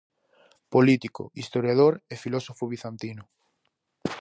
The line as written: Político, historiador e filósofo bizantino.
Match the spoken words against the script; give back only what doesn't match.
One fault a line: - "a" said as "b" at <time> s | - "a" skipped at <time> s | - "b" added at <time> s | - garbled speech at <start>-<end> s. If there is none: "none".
none